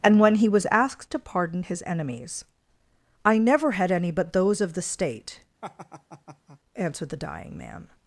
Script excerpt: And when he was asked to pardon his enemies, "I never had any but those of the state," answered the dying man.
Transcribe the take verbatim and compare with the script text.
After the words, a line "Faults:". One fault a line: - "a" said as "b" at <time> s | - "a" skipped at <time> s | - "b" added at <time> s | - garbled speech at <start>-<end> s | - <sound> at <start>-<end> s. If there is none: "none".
And when he was asked to pardon his enemies, "I never had any but those of the state," answered the dying man.
Faults:
- laugh at 5.6-6.6 s